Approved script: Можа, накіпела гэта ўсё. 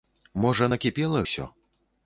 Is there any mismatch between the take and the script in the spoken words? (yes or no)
yes